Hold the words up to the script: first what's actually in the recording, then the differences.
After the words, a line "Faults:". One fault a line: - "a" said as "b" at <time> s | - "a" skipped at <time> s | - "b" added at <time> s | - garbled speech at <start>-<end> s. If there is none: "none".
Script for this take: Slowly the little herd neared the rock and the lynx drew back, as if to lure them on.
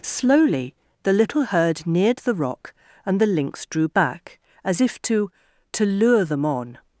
Slowly the little herd neared the rock and the lynx drew back, as if to to lure them on.
Faults:
- "to" added at 5.7 s